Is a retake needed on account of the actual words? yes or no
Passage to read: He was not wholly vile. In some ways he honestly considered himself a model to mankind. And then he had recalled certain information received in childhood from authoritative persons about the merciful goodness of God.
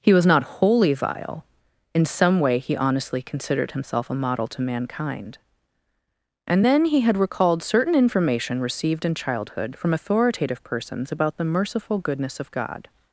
yes